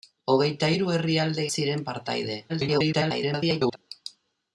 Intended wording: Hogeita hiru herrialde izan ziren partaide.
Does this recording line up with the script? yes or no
no